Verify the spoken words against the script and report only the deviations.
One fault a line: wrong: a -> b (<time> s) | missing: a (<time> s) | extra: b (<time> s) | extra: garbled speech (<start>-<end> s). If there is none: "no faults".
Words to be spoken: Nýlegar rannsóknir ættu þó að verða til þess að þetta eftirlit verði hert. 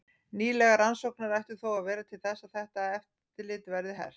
no faults